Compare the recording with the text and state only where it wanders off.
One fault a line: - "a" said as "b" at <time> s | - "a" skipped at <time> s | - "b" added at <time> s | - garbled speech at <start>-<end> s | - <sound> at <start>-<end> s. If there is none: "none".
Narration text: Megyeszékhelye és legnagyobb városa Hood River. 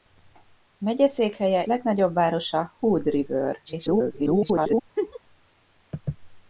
- "és" skipped at 1.6 s
- garbled speech at 3.7-4.8 s
- laugh at 5.0-5.2 s